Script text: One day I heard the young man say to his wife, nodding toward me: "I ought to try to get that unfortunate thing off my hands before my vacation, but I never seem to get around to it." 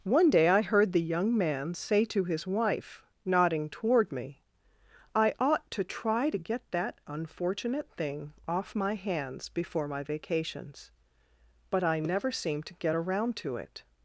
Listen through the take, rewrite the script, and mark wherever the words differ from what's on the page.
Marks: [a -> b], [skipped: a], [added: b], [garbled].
One day I heard the young man say to his wife, nodding toward me: "I ought to try to get that unfortunate thing off my hands before my [vacation, -> vacations] but I never seem to get around to it."